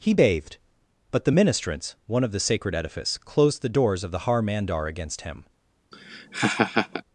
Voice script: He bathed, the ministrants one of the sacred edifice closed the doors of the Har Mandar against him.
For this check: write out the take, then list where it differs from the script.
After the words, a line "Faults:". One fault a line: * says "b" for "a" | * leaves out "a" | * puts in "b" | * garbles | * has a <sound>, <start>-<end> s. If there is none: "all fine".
He bathed, but the ministrants one of the sacred edifice closed the doors of the Har Mandar against him.
Faults:
* puts in "but"
* has a laugh, 5.9-7.0 s